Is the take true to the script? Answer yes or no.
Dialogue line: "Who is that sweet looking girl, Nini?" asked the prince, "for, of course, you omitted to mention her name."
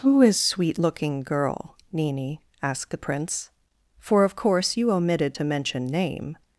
no